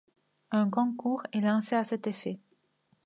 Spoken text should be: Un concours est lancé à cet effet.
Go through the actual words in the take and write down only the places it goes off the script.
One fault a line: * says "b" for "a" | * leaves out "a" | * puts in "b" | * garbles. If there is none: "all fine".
all fine